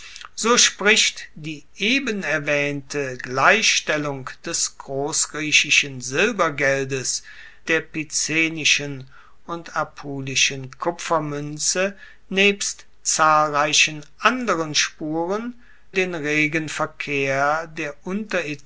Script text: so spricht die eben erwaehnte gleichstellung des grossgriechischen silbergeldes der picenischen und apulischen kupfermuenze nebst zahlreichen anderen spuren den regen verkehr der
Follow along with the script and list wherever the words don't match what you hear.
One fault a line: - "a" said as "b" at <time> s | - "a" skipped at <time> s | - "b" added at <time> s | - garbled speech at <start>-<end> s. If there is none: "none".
none